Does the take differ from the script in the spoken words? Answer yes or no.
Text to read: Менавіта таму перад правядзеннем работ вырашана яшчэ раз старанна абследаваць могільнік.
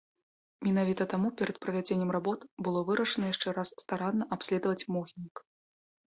yes